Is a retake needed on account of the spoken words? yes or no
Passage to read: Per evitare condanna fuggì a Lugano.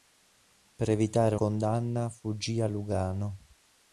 no